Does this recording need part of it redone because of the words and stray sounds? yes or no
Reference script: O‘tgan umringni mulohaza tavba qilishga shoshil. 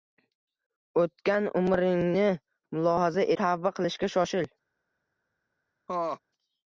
yes